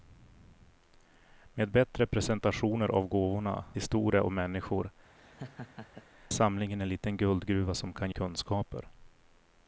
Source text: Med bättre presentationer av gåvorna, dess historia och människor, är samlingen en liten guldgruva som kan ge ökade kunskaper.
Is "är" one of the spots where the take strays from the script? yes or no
yes